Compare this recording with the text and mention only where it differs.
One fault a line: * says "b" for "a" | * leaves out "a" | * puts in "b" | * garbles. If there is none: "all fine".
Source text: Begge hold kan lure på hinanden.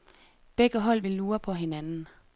* says "vil" for "kan"